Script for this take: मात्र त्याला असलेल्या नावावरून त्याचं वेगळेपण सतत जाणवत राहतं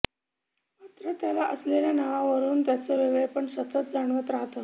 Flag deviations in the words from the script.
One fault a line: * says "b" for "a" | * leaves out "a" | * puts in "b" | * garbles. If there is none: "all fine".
all fine